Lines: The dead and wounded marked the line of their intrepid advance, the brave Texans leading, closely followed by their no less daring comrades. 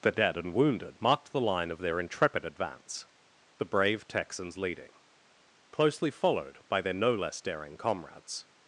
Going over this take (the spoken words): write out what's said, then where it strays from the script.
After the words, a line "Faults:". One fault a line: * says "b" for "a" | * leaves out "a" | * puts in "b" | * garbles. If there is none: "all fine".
The dead and wounded marked the line of their intrepid advance, the brave Texans leading, closely followed by their no less daring comrades.
Faults:
all fine